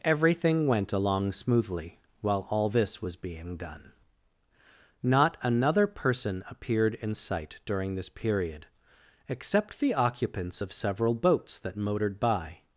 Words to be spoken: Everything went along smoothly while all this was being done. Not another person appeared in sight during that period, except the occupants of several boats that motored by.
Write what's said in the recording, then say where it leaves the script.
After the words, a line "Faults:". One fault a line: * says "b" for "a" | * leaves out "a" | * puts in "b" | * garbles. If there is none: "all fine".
Everything went along smoothly while all this was being done. Not another person appeared in sight during this period, except the occupants of several boats that motored by.
Faults:
* says "this" for "that"